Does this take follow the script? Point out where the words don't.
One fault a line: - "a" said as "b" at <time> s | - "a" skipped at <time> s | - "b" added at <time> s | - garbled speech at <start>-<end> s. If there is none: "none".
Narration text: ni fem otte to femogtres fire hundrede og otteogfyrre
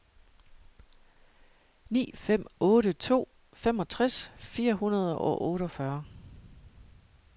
none